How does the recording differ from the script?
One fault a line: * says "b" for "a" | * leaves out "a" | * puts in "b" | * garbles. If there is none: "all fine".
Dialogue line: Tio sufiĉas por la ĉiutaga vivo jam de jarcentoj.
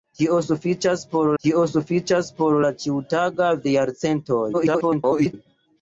* puts in "tio sufiĉas por"
* leaves out "vivo jam"
* garbles